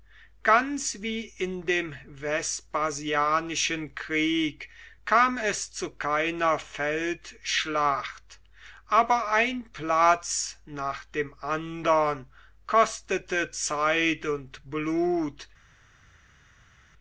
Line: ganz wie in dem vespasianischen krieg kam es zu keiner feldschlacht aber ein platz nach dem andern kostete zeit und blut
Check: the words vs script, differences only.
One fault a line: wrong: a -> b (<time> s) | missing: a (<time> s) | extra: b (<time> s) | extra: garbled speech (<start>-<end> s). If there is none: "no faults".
no faults